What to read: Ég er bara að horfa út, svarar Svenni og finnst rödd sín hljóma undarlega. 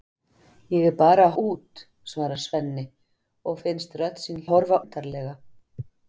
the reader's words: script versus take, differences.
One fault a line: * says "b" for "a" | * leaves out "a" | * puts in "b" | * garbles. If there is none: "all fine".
* leaves out "horfa"
* says "horfa" for "hljóma"